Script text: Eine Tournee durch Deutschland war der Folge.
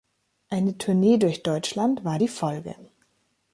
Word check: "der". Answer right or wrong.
wrong